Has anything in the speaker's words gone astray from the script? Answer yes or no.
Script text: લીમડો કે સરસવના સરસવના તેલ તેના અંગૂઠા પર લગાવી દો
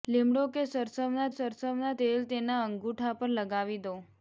no